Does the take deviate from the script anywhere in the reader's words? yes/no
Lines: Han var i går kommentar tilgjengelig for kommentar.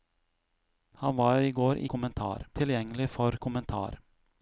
no